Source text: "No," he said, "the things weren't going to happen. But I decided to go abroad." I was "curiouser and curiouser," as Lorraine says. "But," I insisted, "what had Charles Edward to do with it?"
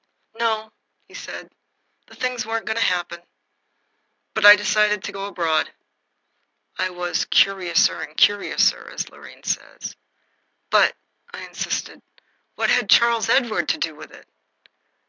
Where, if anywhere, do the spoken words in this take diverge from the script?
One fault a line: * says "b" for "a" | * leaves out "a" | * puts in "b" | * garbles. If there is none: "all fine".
all fine